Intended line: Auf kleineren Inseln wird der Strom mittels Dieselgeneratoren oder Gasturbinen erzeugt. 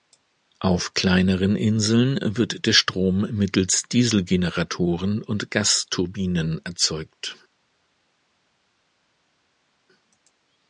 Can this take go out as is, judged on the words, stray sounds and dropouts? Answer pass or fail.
fail